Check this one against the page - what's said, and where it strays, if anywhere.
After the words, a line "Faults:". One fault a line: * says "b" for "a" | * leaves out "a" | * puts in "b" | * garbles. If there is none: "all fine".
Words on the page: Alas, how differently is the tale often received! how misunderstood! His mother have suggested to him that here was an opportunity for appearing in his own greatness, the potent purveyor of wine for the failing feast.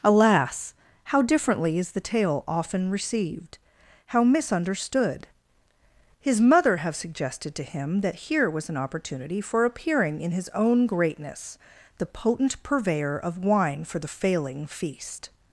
Alas, how differently is the tale often received! how misunderstood! His mother have suggested to him that here was an opportunity for appearing in his own greatness, the potent purveyor of wine for the failing feast.
Faults:
all fine